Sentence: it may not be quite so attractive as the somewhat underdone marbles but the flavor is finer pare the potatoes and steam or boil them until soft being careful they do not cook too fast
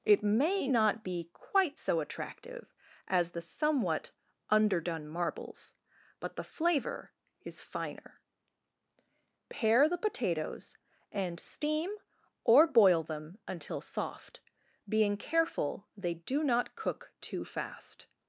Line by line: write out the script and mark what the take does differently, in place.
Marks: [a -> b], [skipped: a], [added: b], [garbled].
it may not be quite so attractive as the somewhat underdone marbles but the flavor is finer pare the potatoes and steam or boil them until soft being careful they do not cook too fast